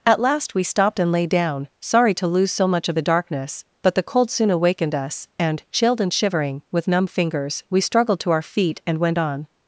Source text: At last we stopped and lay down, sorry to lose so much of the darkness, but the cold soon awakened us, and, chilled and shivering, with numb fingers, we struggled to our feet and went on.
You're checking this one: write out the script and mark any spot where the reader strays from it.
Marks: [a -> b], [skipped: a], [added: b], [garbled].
At last we stopped and lay down, sorry to lose so much of the darkness, but the cold soon awakened us, and, chilled and shivering, with numb fingers, we struggled to our feet and went on.